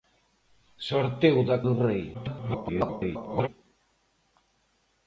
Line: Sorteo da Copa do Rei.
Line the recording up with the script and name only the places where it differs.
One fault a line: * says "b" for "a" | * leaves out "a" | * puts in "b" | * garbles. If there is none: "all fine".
* leaves out "Copa"
* garbles